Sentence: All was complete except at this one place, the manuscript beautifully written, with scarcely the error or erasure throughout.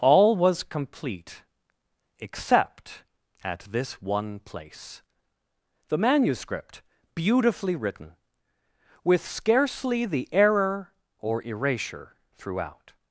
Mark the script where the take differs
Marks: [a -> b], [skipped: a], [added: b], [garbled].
All was complete except at this one place, the manuscript beautifully written, with scarcely the error or erasure throughout.